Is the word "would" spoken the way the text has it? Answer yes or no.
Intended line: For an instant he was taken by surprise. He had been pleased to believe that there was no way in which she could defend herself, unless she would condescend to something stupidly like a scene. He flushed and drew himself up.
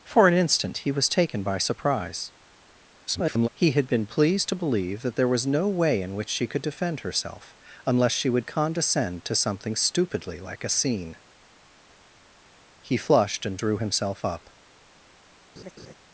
yes